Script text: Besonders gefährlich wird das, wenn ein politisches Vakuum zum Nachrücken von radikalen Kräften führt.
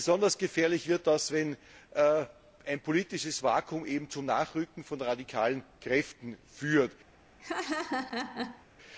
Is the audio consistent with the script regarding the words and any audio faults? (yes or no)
no